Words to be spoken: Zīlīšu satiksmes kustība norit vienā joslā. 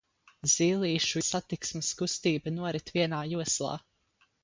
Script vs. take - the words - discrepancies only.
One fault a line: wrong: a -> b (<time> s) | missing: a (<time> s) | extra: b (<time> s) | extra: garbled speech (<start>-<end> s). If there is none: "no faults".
no faults